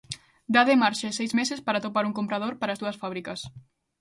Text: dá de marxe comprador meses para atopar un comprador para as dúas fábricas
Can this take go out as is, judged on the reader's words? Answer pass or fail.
fail